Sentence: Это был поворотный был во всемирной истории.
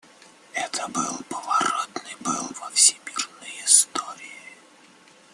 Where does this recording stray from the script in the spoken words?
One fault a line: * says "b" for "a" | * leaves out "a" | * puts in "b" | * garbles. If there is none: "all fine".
all fine